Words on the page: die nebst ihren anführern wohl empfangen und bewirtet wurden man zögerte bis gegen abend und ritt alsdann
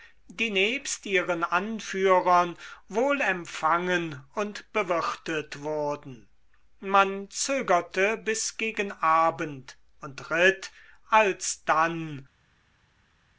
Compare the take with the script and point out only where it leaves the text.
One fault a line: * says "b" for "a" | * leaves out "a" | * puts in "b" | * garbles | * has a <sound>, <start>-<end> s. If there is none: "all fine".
all fine